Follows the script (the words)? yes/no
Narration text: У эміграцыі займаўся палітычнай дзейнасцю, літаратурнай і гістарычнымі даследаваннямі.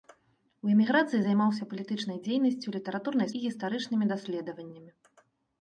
yes